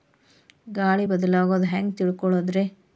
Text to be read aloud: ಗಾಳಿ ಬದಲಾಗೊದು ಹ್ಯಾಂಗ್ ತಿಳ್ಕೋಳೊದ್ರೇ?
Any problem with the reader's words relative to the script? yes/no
no